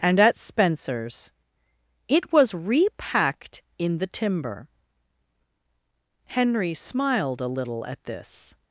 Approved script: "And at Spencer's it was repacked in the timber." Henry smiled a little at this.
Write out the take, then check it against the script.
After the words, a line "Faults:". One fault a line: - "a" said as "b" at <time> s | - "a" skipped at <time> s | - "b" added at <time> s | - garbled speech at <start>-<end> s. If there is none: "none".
"And at Spencer's it was repacked in the timber." Henry smiled a little at this.
Faults:
none